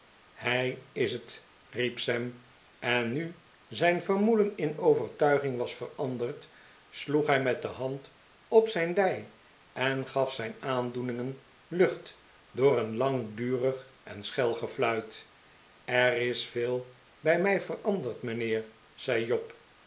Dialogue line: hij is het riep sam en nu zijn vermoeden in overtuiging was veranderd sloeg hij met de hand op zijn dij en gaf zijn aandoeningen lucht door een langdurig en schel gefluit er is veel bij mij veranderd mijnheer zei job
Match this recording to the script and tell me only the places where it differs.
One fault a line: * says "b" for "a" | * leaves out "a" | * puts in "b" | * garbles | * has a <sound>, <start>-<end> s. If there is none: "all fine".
all fine